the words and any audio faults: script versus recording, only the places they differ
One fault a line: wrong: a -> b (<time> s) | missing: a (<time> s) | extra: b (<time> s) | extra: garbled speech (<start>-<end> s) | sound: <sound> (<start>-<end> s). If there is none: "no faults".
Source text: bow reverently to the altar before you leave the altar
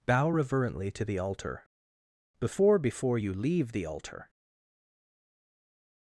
extra: before (2.8 s)